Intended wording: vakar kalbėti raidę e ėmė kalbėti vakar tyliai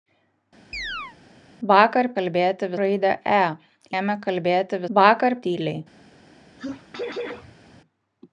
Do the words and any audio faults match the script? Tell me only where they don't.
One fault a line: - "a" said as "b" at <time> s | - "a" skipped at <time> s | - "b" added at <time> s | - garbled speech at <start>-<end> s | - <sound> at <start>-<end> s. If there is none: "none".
- chirp at 0.7-1.2 s
- sneeze at 6.6-7.8 s